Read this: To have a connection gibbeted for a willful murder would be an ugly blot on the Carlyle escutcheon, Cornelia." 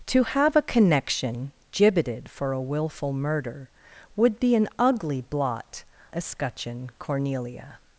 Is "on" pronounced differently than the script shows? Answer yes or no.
yes